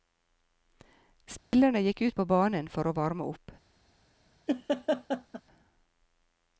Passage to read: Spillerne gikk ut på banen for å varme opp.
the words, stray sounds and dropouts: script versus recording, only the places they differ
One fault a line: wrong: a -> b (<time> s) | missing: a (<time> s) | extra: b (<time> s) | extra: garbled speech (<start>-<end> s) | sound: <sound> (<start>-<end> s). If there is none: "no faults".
sound: dropout (1.4-1.5 s)
sound: laugh (4.5-5.4 s)